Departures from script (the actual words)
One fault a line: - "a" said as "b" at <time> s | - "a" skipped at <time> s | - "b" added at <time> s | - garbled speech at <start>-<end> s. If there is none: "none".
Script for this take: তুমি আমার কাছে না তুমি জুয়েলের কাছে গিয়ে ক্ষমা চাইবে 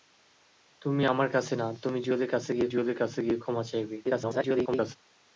- "জুয়েলের কাছে গিয়ে" added at 2.7 s
- garbled speech at 4.0-5.0 s